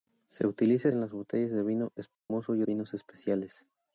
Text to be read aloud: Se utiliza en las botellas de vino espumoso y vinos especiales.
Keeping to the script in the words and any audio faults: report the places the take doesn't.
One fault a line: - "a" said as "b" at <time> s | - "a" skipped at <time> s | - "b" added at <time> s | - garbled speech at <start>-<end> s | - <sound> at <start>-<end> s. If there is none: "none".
- dropout at 2.2-2.3 s